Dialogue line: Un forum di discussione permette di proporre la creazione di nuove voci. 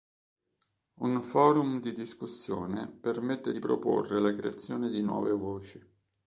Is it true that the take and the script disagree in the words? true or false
false